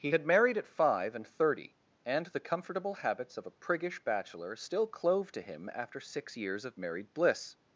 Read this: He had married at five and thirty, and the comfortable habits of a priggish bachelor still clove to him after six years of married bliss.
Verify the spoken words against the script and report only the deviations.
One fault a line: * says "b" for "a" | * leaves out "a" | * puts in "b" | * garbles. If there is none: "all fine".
all fine